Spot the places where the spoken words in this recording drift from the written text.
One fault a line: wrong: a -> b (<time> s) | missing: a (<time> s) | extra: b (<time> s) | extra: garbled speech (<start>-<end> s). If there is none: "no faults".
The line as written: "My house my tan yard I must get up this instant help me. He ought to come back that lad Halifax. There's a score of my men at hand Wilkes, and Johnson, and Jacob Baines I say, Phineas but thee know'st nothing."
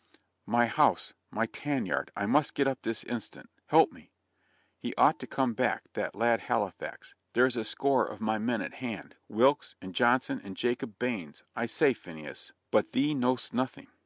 no faults